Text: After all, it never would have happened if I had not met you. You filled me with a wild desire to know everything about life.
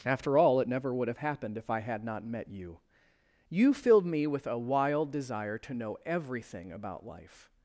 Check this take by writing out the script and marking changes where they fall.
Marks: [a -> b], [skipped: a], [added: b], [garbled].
After all, it never would have happened if I had not met you. You filled me with a wild desire to know everything about life.